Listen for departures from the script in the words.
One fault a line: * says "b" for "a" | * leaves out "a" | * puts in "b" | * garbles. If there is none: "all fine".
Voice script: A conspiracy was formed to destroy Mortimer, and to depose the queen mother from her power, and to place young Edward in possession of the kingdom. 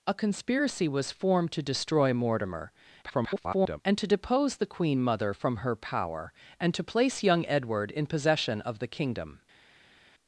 * garbles